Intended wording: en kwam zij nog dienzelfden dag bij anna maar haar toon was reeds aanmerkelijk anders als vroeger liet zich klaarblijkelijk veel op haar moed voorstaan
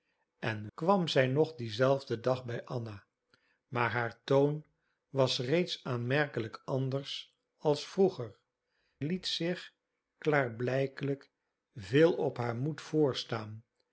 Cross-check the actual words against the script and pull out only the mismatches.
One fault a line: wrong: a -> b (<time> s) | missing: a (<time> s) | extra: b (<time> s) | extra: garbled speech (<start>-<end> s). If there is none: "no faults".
no faults